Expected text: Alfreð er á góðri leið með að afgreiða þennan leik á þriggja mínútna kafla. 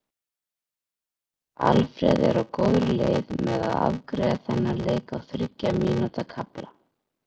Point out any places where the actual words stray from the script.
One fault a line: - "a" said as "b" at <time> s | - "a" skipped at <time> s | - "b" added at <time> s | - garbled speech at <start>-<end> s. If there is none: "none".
none